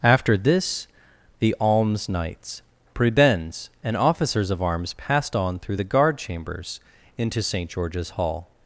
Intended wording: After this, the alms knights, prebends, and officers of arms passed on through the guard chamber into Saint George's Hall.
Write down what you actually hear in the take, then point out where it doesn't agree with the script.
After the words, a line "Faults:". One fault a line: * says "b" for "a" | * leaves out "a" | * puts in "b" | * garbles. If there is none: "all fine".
After this, the alms knights, prebends, and officers of arms passed on through the guard chambers into Saint George's Hall.
Faults:
* says "chambers" for "chamber"